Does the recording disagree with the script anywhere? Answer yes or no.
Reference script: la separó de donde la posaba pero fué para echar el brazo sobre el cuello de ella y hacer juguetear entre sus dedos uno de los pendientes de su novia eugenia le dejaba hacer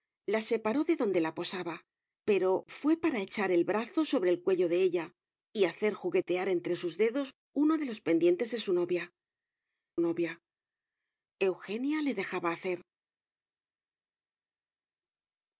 yes